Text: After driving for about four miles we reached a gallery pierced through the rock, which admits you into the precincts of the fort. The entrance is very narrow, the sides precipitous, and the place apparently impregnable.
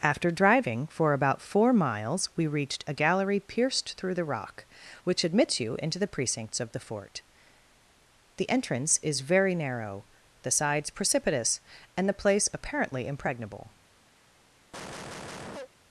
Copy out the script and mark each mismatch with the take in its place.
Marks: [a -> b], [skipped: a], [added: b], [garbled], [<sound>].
After driving for about four miles we reached a gallery pierced through the rock, which admits you into the precincts of the fort. The entrance is very narrow, the sides precipitous, and the place apparently impregnable. [cough]